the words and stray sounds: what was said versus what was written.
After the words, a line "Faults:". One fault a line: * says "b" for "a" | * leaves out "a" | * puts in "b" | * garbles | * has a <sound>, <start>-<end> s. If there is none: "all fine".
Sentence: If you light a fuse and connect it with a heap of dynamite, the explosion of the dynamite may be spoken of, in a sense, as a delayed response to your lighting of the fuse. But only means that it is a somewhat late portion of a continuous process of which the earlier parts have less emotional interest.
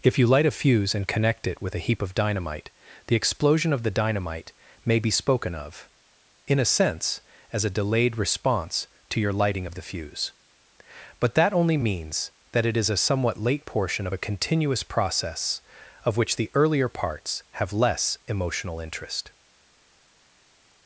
If you light a fuse and connect it with a heap of dynamite, the explosion of the dynamite may be spoken of, in a sense, as a delayed response to your lighting of the fuse. But that only means that it is a somewhat late portion of a continuous process of which the earlier parts have less emotional interest.
Faults:
* puts in "that"